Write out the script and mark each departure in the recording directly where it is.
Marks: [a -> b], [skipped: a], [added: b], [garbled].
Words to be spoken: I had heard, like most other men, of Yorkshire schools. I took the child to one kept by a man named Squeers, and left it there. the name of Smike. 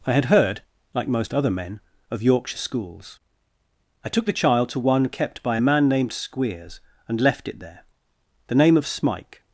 I had heard, like most other men, of Yorkshire schools. I took the child to one kept by a man named Squeers, and left it there. the name of Smike.